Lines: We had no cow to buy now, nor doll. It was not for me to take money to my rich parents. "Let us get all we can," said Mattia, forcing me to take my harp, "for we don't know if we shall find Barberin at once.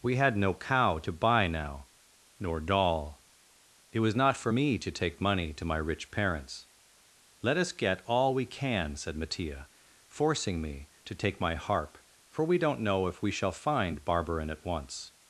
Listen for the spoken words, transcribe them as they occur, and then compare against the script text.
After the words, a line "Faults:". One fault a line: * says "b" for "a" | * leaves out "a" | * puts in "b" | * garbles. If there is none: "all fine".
We had no cow to buy now, nor doll. It was not for me to take money to my rich parents. "Let us get all we can," said Mattia, forcing me to take my harp, "for we don't know if we shall find Barberin at once.
Faults:
all fine